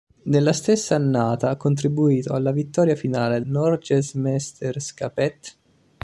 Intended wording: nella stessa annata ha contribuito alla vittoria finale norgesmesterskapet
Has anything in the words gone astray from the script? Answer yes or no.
no